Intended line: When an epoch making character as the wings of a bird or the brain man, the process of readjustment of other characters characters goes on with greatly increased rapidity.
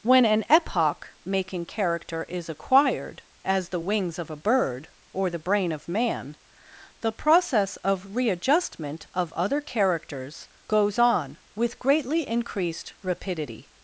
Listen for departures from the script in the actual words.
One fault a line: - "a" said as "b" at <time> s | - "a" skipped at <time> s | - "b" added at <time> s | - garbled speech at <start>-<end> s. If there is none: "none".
- "is acquired" added at 2.2 s
- "of" added at 5.7 s
- "characters" skipped at 10.5 s